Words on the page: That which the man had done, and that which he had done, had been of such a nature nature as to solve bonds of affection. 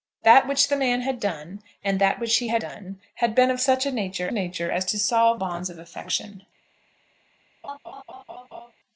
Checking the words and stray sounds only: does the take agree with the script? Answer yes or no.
no